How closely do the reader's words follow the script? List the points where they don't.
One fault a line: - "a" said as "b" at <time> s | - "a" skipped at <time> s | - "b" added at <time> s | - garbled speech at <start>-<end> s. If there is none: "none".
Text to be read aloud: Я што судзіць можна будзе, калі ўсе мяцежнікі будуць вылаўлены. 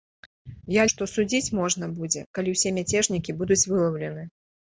none